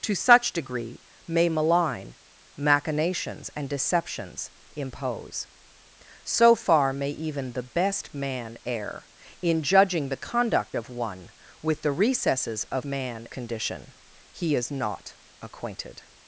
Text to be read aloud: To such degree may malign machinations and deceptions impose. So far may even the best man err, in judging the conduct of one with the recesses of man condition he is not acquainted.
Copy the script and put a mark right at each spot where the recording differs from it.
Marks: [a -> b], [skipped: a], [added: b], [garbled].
To such degree may malign machinations and deceptions impose. So far may even the best man err, in judging the conduct of one with the recesses of man condition he is not acquainted.